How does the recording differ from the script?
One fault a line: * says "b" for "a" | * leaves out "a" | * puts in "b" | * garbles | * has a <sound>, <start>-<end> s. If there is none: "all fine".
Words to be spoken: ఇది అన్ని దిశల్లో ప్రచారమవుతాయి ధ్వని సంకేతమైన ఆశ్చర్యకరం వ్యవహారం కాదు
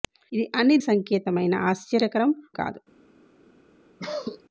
* leaves out "దిశల్లో ప్రచారమవుతాయి ధ్వని"
* leaves out "వ్యవహారం"
* has a cough, 4.0-4.4 s